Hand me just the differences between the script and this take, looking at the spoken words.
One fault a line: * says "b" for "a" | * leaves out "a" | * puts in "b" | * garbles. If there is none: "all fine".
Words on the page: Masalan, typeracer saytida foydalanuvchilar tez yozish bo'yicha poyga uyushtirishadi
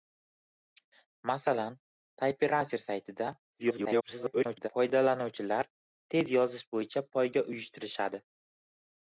* garbles